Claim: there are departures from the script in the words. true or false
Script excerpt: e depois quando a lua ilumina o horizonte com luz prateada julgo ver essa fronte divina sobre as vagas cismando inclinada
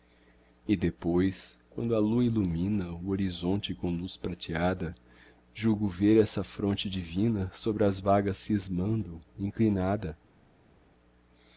false